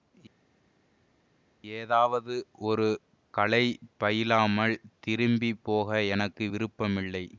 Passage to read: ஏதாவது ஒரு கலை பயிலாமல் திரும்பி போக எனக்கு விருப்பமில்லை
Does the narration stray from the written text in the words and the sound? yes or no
no